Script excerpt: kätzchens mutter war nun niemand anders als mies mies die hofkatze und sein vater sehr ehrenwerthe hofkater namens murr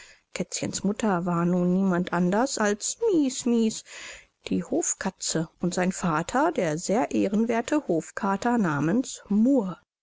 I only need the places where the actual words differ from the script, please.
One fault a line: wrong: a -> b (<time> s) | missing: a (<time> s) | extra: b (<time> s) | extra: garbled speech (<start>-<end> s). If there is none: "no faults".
extra: der (6.5 s)